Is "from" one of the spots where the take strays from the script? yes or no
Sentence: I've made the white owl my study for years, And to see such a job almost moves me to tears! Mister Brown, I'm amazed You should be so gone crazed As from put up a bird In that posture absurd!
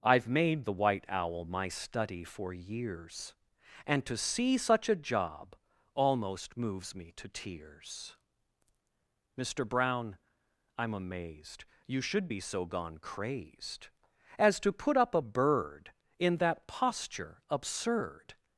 yes